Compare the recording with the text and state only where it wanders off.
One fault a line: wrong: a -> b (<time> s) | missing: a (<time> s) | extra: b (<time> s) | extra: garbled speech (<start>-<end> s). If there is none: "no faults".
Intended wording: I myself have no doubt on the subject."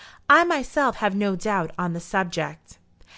no faults